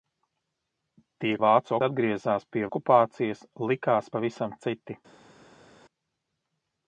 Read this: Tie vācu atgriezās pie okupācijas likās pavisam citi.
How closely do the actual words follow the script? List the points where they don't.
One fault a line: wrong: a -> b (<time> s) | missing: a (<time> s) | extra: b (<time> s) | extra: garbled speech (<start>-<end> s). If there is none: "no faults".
no faults